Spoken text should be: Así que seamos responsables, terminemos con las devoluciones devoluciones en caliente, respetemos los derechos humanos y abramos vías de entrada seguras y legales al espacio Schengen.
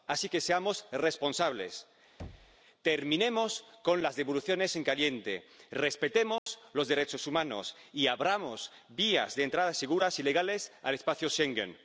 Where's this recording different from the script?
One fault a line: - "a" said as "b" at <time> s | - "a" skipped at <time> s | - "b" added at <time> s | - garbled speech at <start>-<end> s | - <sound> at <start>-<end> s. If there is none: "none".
- thud at 2.2-2.6 s
- "devoluciones" skipped at 4.8 s
- dropout at 6.4-6.5 s